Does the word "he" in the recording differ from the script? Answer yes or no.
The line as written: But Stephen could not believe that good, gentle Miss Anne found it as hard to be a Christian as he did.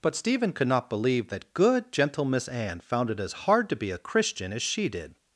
yes